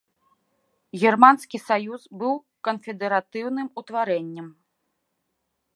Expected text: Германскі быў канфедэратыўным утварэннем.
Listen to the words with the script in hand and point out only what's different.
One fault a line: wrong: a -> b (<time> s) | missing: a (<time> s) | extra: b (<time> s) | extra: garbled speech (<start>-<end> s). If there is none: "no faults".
extra: саюз (1.7 s)